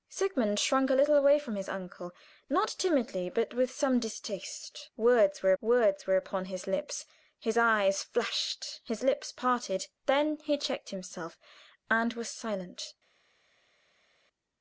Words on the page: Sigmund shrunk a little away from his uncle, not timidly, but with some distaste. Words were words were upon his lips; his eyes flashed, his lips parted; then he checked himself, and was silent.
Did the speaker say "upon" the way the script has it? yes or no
yes